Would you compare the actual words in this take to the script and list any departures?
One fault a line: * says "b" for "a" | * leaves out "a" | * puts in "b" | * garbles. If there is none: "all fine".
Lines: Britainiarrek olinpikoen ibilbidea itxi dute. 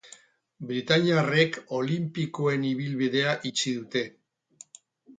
all fine